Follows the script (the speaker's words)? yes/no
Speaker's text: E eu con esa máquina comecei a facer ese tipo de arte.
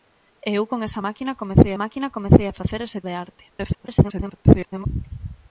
no